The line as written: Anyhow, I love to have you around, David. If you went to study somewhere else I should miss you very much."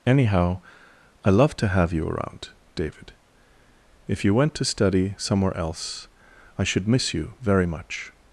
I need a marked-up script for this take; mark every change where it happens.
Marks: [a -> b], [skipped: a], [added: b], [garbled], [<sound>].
Anyhow, I love to have you around, David. If you went to study somewhere else I should miss you very much."